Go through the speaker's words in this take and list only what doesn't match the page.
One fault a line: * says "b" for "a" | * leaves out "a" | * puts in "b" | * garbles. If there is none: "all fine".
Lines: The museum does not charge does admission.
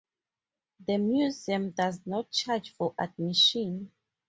* says "for" for "does"